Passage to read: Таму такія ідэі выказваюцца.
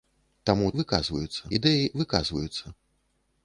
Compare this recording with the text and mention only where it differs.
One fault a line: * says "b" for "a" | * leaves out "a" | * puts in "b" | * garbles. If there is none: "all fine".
* says "выказваюцца" for "такія"